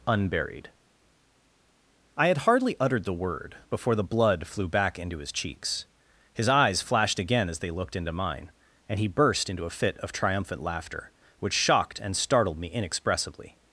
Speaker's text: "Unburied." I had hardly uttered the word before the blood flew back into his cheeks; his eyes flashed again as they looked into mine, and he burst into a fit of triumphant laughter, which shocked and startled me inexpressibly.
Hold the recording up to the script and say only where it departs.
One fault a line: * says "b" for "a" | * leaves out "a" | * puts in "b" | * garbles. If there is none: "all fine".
all fine